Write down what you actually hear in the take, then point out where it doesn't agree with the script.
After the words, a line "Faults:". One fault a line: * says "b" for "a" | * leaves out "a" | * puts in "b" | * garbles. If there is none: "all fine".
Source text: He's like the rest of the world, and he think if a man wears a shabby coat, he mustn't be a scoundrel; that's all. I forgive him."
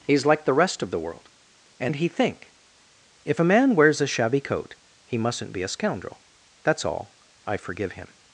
He's like the rest of the world, and he think if a man wears a shabby coat, he mustn't be a scoundrel; that's all. I forgive him."
Faults:
all fine